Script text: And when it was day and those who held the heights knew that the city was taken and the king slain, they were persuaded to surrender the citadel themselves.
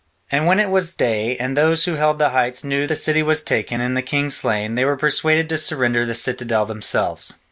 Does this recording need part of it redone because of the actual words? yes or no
yes